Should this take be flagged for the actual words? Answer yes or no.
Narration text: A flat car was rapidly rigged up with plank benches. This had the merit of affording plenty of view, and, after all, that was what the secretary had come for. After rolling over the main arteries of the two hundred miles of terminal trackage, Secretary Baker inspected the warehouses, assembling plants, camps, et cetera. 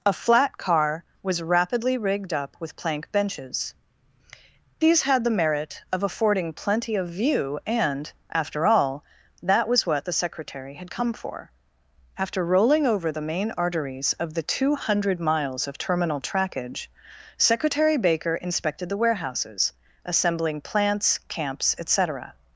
yes